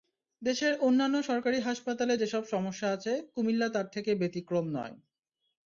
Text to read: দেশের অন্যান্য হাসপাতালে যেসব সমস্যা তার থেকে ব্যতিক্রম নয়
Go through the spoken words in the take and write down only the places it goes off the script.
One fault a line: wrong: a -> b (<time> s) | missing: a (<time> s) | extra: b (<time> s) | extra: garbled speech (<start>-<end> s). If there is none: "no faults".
extra: সরকারি (1.2 s)
extra: আছে কুমিল্লা (2.9 s)